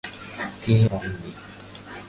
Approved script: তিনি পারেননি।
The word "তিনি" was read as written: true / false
true